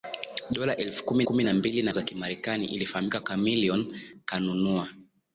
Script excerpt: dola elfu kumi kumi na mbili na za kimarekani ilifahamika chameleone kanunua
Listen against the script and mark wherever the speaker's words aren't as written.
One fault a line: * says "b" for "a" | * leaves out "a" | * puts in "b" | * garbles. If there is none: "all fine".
all fine